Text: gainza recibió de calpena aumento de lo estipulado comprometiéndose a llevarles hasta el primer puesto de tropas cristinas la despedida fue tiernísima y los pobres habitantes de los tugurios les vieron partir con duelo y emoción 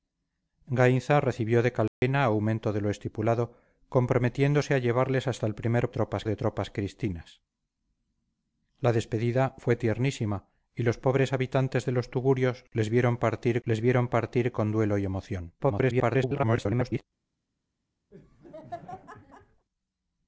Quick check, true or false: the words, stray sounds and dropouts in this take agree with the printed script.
false